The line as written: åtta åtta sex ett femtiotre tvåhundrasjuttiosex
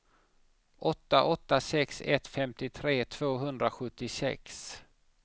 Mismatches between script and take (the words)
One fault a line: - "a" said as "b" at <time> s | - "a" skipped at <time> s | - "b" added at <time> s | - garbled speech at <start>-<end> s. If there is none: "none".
none